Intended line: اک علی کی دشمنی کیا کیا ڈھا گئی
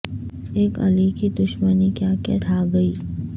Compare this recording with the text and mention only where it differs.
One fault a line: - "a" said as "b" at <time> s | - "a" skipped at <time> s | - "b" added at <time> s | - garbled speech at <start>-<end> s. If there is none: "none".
none